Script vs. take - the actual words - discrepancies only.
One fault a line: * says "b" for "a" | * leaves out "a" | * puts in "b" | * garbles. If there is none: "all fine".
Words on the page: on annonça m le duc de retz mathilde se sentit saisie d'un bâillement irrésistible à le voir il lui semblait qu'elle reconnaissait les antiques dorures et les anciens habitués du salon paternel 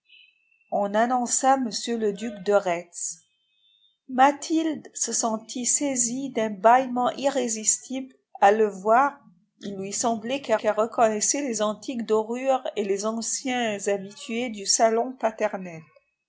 * puts in "qu'elle"